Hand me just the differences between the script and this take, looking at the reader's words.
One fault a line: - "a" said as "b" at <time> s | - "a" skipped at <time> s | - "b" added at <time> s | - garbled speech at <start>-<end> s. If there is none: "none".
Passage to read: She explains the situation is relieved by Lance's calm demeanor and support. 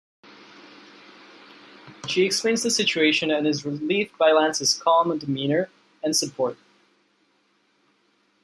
- "and" added at 3.3 s